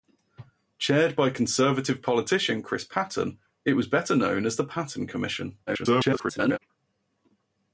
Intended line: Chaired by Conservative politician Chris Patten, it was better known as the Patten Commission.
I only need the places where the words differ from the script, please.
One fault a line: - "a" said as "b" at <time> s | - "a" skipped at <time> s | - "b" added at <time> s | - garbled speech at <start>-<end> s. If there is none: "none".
- garbled speech at 5.7-6.6 s